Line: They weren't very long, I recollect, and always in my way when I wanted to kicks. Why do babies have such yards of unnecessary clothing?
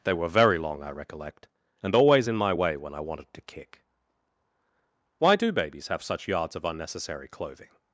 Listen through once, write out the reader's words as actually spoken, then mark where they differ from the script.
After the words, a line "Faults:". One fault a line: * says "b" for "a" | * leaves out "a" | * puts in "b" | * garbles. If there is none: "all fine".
They were very long, I recollect, and always in my way when I wanted to kick. Why do babies have such yards of unnecessary clothing?
Faults:
* says "were" for "weren't"
* says "kick" for "kicks"